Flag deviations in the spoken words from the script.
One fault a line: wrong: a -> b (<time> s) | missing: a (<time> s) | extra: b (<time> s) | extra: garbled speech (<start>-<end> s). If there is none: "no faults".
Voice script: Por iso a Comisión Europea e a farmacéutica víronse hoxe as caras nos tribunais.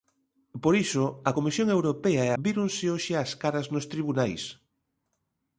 missing: a farmacéutica (2.3 s)